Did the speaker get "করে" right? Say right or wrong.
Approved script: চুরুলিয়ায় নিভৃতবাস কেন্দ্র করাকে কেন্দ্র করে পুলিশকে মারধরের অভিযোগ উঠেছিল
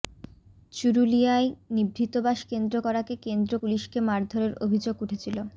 wrong